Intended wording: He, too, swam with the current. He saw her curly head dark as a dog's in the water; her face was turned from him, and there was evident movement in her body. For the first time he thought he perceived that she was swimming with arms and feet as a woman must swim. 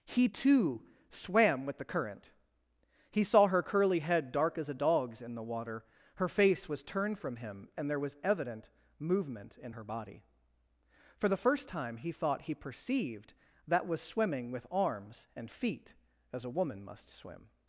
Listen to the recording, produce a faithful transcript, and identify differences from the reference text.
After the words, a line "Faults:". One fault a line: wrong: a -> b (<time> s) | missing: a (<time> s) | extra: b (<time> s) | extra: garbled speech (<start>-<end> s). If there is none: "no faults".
He, too, swam with the current. He saw her curly head dark as a dog's in the water; her face was turned from him, and there was evident movement in her body. For the first time he thought he perceived that was swimming with arms and feet as a woman must swim.
Faults:
missing: she (13.9 s)